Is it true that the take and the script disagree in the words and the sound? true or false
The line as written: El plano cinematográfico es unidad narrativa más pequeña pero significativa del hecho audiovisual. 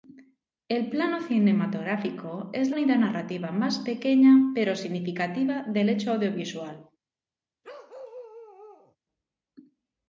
true